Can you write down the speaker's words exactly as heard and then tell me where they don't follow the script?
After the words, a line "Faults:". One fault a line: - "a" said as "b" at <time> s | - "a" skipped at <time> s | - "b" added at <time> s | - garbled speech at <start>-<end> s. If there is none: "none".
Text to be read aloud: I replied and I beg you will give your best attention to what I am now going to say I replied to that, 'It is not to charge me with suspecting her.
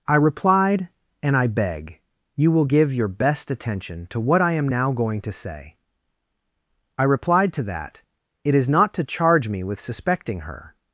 I replied and I beg you will give your best attention to what I am now going to say I replied to that, 'It is not to charge me with suspecting her.
Faults:
none